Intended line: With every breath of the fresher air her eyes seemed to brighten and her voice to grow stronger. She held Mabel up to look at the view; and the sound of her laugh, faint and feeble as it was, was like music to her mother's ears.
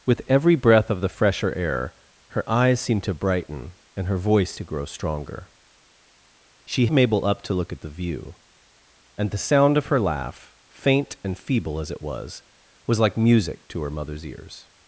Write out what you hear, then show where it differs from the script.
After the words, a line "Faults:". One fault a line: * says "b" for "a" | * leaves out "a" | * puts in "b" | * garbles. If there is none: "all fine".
With every breath of the fresher air her eyes seemed to brighten and her voice to grow stronger. She Mabel up to look at the view; and the sound of her laugh, faint and feeble as it was, was like music to her mother's ears.
Faults:
* leaves out "held"